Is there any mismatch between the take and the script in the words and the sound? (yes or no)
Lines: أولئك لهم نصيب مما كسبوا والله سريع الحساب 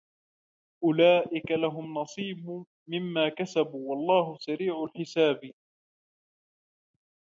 no